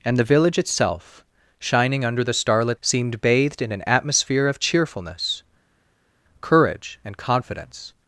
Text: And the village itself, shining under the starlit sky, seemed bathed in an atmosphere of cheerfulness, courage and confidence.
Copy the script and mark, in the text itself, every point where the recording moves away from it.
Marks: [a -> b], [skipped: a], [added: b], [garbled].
And the village itself, shining under the starlit [skipped: sky,] seemed bathed in an atmosphere of cheerfulness, courage and confidence.